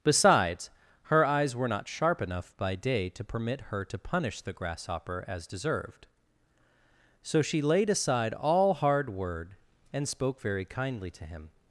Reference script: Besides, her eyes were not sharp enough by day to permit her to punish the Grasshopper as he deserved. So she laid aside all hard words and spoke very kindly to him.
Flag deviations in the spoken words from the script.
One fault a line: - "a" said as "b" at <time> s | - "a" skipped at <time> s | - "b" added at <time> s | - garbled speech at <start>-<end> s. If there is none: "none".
- "he" skipped at 5.5 s
- "words" said as "word" at 9.1 s